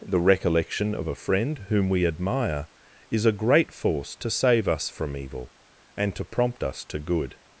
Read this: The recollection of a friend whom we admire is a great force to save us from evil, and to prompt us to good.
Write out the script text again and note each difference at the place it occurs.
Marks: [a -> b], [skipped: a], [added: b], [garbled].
The recollection of a friend whom we admire is a great force to save us from evil, and to prompt us to good.